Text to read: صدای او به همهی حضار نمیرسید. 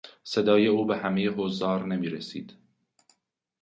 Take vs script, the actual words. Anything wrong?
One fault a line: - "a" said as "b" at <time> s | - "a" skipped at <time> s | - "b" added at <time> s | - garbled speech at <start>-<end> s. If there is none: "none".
none